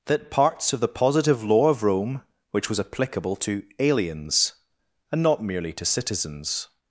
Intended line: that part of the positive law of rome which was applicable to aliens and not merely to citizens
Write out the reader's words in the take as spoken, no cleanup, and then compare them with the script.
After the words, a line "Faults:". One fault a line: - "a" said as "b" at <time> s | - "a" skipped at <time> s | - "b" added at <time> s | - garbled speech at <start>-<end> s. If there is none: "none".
that parts of the positive law of rome which was applicable to aliens and not merely to citizens
Faults:
- "part" said as "parts" at 0.3 s